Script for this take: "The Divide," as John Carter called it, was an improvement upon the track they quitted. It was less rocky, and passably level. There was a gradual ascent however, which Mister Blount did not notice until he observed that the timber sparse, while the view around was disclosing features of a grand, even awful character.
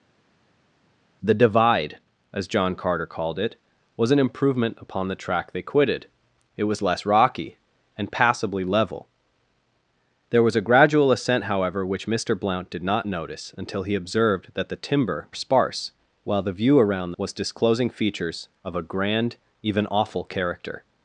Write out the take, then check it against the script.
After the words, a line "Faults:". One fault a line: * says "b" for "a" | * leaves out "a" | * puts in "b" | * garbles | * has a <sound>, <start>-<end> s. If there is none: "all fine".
"The Divide," as John Carter called it, was an improvement upon the track they quitted. It was less rocky, and passably level. There was a gradual ascent however, which Mister Blount did not notice until he observed that the timber sparse, while the view around was disclosing features of a grand, even awful character.
Faults:
all fine